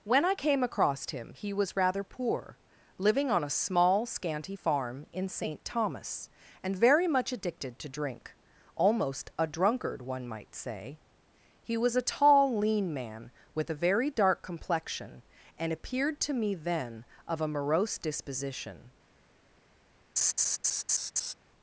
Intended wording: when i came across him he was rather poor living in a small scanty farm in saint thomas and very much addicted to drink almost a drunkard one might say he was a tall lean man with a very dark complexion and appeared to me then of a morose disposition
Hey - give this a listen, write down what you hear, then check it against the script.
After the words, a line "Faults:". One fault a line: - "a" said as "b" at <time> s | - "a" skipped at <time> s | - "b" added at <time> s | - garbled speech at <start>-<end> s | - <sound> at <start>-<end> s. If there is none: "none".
when i came across him he was rather poor living on a small scanty farm in saint thomas and very much addicted to drink almost a drunkard one might say he was a tall lean man with a very dark complexion and appeared to me then of a morose disposition
Faults:
- "in" said as "on" at 3.3 s
- laugh at 20.2-21.3 s